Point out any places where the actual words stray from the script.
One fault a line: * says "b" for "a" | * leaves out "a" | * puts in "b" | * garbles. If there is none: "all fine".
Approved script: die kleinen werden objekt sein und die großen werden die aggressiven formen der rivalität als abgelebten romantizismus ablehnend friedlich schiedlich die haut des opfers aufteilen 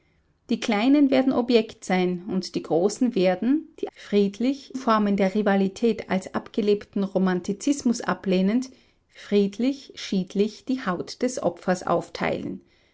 * says "friedlich" for "aggressiven"